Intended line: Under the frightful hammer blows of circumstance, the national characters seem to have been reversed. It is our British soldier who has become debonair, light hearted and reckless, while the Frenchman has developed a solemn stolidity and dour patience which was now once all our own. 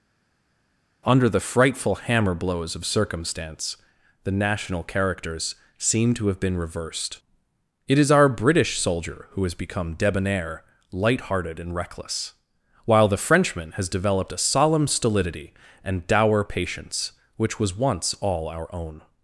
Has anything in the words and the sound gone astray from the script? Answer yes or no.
yes